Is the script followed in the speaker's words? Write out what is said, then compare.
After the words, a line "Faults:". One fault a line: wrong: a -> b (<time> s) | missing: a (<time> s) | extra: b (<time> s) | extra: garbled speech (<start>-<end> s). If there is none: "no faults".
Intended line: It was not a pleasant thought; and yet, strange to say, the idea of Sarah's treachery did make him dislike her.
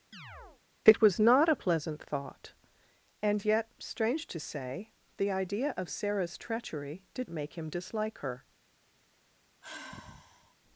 It was not a pleasant thought; and yet, strange to say, the idea of Sarah's treachery did make him dislike her.
Faults:
no faults